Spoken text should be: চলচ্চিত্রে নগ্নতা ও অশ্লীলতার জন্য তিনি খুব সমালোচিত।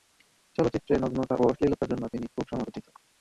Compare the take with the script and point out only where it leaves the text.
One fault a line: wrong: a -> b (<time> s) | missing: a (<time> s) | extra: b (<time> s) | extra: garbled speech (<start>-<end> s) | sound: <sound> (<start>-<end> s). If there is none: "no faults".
sound: dropout (1.8-1.8 s)